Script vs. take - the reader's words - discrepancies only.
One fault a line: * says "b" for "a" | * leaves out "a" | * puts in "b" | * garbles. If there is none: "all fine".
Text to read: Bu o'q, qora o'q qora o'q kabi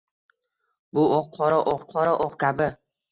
all fine